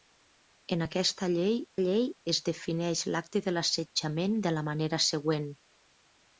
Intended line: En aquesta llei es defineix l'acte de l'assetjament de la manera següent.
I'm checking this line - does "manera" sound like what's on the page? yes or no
yes